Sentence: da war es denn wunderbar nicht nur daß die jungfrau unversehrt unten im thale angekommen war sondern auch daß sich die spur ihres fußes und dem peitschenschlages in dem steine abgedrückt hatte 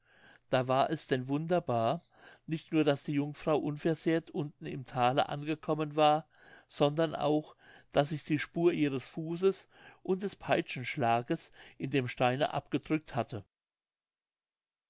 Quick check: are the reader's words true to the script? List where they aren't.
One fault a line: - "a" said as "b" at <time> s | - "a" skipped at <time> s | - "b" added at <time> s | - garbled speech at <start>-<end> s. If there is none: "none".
- "dem" said as "des" at 10.2 s